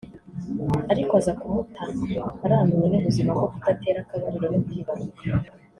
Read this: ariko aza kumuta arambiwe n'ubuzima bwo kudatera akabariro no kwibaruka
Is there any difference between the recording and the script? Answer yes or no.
no